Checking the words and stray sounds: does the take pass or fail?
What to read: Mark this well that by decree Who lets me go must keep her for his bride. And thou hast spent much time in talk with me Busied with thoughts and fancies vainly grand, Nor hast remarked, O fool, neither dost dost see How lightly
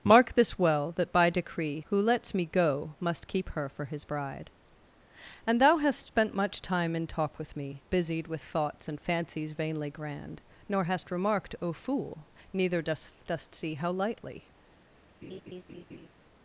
fail